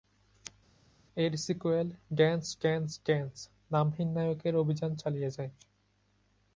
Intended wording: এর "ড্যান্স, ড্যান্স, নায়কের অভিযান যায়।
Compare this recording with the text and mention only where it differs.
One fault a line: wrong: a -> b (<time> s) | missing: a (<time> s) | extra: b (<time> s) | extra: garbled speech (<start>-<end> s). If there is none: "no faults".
extra: সিক্যুয়েল (1.4 s)
extra: ড্যান্স নামহীন (3.0 s)
extra: চালিয়ে (4.9 s)